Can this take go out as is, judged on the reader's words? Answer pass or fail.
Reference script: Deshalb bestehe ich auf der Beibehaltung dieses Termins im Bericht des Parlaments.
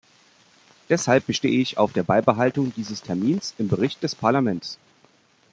pass